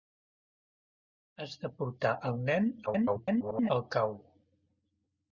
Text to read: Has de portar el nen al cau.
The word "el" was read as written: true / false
true